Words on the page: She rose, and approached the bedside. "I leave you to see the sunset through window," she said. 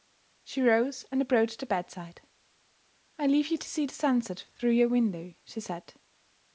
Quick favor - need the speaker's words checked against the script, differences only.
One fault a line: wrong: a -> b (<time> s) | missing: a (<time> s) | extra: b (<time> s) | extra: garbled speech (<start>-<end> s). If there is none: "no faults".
extra: your (4.7 s)